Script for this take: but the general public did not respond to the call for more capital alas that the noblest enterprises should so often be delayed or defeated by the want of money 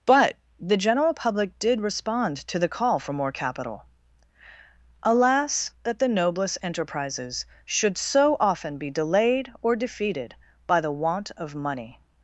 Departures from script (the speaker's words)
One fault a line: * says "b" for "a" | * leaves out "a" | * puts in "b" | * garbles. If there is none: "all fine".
* leaves out "not"